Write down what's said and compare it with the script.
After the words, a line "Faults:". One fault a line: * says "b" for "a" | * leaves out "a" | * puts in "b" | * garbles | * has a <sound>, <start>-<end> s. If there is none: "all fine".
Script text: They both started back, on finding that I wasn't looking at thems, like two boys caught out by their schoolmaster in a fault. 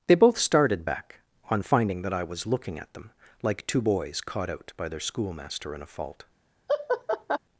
They both started back, on finding that I was looking at them, like two boys caught out by their schoolmaster in a fault.
Faults:
* says "was" for "wasn't"
* says "them" for "thems"
* has a laugh, 6.7-7.4 s